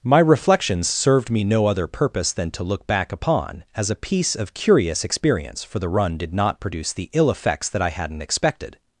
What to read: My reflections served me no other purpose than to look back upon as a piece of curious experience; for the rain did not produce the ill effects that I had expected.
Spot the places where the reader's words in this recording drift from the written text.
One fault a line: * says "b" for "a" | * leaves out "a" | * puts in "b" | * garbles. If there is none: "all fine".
* says "run" for "rain"
* says "hadn't" for "had"